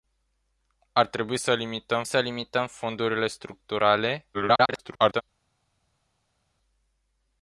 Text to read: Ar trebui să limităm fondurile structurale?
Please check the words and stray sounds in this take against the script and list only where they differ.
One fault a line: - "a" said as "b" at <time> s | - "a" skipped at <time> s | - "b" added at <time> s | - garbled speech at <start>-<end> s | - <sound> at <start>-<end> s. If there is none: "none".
- "să limităm" added at 2.0 s
- garbled speech at 4.3-5.2 s